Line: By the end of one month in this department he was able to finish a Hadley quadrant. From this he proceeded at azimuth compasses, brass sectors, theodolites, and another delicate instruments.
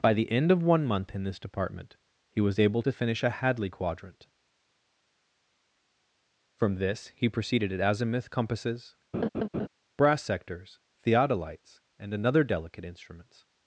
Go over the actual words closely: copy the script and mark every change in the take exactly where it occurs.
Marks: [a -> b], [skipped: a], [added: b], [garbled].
By the end of one month in this department he was able to finish a Hadley quadrant. From this he proceeded at azimuth compasses, brass sectors, theodolites, and another delicate instruments.